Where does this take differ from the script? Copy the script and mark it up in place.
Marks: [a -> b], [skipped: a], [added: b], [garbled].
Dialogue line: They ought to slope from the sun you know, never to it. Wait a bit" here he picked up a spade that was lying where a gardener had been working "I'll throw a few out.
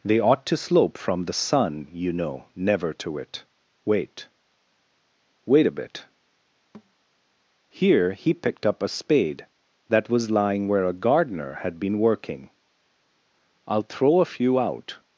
They ought to slope from the sun you know, never to it. Wait [added: Wait] a bit" here he picked up a spade that was lying where a gardener had been working "I'll throw a few out.